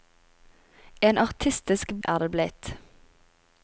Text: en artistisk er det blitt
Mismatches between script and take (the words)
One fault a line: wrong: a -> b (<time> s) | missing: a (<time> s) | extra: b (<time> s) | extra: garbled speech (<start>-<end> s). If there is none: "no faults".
no faults